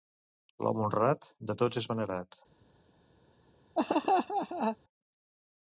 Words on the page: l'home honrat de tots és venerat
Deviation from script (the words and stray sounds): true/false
true